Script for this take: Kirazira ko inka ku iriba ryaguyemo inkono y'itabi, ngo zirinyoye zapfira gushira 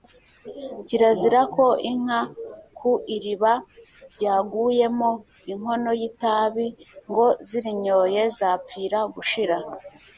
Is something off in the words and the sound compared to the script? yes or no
no